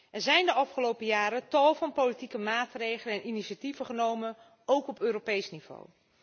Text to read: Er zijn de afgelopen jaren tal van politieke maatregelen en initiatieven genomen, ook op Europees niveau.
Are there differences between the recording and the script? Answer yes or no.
no